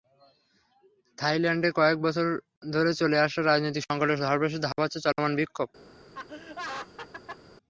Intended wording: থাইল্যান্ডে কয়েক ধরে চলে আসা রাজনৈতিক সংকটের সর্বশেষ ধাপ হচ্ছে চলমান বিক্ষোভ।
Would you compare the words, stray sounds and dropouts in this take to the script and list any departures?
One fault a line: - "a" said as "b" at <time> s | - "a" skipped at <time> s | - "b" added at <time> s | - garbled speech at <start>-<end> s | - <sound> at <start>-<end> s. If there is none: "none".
- "বছর" added at 2.0 s
- laugh at 6.1-7.4 s